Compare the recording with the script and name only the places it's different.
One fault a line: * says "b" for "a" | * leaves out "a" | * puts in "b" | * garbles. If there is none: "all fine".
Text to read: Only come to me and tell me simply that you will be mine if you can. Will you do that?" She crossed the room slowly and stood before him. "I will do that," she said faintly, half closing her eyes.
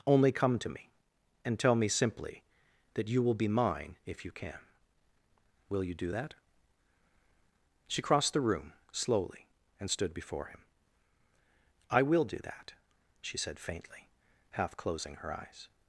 all fine